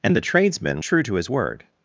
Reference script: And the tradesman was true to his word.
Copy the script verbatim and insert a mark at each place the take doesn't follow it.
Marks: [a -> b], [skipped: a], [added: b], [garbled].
And the tradesman [skipped: was] true to his word.